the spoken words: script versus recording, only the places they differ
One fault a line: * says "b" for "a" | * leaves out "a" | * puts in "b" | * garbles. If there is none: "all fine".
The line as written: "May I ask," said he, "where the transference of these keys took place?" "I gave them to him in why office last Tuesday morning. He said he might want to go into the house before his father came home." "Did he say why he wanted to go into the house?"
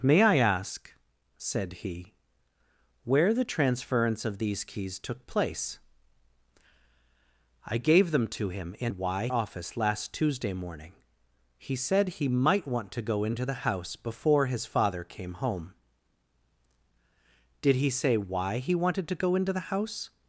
all fine